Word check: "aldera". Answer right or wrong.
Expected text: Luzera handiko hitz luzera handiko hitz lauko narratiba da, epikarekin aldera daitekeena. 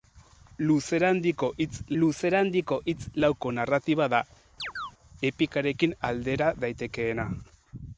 right